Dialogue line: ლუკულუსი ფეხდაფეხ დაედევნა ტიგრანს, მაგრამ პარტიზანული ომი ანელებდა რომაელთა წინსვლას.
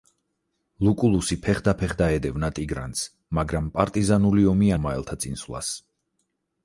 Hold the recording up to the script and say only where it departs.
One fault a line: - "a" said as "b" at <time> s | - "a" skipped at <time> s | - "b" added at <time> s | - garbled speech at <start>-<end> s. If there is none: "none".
- "ანელებდა" skipped at 4.7 s